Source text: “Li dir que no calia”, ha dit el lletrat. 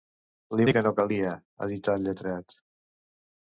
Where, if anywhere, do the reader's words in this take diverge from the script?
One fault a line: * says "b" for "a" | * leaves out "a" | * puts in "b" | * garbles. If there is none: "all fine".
all fine